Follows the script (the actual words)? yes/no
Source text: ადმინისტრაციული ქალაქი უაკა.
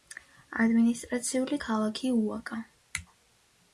yes